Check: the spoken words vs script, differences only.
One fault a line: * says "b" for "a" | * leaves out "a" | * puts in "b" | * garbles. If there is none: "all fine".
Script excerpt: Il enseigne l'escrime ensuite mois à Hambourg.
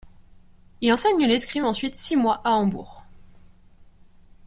* puts in "six"